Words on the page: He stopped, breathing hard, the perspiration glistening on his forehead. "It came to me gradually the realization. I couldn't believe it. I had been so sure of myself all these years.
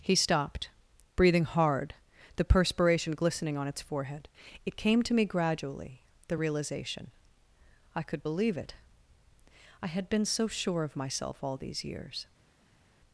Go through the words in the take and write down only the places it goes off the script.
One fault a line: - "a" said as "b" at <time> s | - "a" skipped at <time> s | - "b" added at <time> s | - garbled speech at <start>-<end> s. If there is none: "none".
- "his" said as "its" at 3.7 s
- "couldn't" said as "could" at 8.0 s